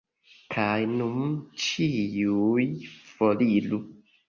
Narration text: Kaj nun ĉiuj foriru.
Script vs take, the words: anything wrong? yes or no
no